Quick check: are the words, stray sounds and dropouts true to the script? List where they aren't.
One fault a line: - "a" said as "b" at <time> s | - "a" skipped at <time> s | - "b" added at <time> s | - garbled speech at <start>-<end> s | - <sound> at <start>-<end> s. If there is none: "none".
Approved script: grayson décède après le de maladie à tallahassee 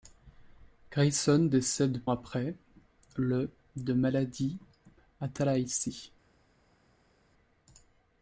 none